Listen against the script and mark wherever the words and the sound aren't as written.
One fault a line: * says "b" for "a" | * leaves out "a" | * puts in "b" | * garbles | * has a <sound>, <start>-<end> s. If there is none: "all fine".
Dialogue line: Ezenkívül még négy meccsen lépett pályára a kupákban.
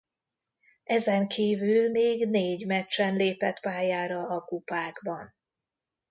all fine